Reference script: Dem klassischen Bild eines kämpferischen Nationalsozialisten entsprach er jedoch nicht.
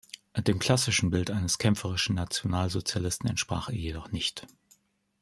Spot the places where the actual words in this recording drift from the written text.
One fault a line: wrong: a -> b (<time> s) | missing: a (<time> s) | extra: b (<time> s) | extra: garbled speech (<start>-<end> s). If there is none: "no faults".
no faults